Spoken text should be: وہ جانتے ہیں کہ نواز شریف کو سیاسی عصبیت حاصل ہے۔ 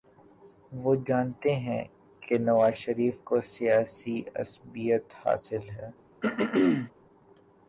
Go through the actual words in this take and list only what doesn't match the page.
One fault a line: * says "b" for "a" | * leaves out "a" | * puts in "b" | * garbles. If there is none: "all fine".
all fine